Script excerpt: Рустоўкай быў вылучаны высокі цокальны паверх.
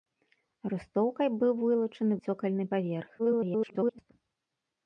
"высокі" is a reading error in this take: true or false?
true